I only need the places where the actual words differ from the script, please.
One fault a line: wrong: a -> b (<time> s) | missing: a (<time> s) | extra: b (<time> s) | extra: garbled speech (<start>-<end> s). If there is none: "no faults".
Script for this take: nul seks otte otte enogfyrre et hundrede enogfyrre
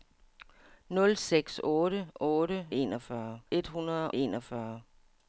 no faults